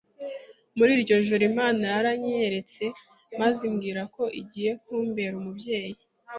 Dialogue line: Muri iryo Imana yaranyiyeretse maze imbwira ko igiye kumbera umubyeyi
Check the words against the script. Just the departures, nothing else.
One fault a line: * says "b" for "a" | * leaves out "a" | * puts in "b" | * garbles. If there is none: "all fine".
* puts in "joro"